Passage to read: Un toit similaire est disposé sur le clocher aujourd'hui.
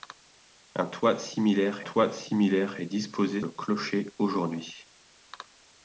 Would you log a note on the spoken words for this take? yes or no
yes